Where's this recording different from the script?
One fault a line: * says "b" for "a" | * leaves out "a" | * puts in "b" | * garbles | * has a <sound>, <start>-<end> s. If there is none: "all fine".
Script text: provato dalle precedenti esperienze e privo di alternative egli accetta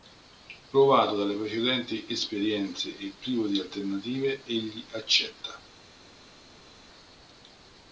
all fine